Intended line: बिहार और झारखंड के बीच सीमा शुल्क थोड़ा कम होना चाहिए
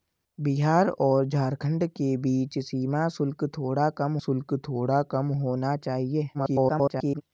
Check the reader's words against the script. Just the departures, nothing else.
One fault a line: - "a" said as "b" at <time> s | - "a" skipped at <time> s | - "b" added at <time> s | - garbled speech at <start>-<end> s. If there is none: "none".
- "शुल्क थोड़ा कम" added at 4.2 s
- garbled speech at 6.3-7.2 s